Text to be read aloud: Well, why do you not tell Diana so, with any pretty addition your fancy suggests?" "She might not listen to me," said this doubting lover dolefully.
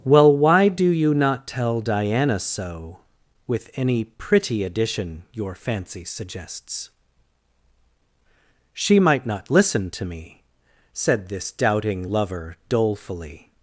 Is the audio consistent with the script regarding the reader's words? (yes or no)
yes